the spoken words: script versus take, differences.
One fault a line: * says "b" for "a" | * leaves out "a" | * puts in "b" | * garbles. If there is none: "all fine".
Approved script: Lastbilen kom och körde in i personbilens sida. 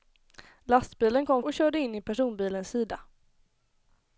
all fine